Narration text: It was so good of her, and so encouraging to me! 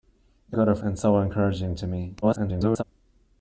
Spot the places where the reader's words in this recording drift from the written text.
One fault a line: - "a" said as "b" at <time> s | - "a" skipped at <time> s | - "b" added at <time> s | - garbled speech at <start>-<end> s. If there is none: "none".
- "was so" skipped at 0.6 s
- "her" skipped at 0.8 s
- garbled speech at 2.2-2.8 s